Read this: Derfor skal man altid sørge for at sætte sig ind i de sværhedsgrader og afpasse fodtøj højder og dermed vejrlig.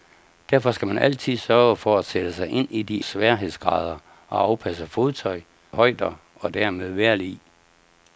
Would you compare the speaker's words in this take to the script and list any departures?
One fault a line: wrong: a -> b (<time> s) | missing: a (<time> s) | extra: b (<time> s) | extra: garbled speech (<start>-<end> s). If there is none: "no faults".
no faults